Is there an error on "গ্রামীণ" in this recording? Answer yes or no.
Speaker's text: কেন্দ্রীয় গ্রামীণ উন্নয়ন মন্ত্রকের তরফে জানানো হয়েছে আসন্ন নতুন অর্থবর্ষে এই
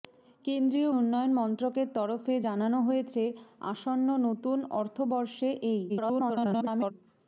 yes